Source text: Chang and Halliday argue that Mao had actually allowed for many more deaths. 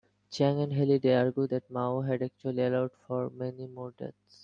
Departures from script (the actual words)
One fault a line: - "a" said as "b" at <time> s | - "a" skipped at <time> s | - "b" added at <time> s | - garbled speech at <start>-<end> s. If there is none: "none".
none